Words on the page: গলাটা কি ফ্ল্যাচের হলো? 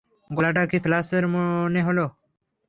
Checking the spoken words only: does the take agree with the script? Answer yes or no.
no